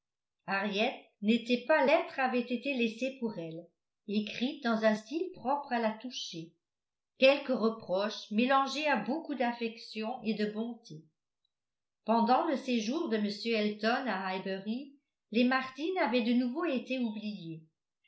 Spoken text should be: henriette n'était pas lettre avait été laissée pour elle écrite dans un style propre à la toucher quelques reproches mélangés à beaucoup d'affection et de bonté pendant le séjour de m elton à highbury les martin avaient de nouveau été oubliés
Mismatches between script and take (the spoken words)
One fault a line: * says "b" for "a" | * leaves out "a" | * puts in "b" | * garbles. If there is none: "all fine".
all fine